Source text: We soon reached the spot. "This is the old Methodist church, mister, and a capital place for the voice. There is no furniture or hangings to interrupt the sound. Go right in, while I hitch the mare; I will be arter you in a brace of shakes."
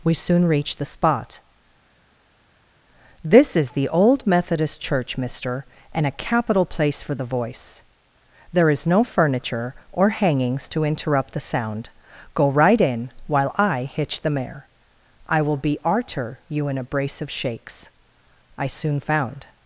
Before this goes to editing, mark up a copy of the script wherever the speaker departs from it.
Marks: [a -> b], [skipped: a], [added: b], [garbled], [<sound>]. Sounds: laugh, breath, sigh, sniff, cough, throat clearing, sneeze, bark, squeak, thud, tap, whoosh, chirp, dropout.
We soon reached the spot. "This is the old Methodist church, mister, and a capital place for the voice. There is no furniture or hangings to interrupt the sound. Go right in, while I hitch the mare; I will be arter you in a brace of shakes." [added: I soon found]